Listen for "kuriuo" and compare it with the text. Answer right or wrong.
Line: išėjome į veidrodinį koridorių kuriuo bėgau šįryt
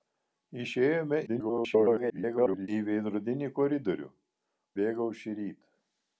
wrong